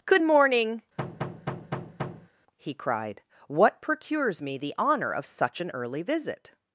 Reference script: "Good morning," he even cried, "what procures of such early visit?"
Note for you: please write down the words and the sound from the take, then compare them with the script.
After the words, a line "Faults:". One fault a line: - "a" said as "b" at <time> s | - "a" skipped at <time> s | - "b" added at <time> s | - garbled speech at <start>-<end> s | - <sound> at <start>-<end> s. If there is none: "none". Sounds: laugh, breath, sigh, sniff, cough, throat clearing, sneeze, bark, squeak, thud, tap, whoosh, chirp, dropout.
"Good morning," he cried, "what procures me the honor of such an early visit?"
Faults:
- thud at 1.0-2.3 s
- "even" skipped at 2.7 s
- "me the honor" added at 4.4 s
- "an" added at 5.6 s